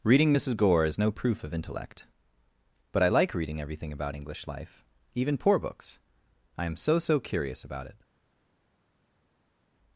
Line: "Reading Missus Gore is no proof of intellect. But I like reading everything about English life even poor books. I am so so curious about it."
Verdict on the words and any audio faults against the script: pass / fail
pass